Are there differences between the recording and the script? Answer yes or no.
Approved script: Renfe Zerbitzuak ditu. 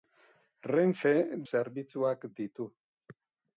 no